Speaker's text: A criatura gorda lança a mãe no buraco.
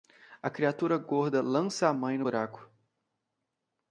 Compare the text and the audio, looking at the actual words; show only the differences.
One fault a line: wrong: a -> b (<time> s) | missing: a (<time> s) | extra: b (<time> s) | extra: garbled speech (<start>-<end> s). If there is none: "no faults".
no faults